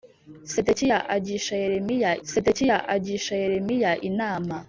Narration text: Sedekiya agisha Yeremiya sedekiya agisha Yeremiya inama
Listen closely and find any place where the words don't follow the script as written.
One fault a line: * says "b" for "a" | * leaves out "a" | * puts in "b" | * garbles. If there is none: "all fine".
all fine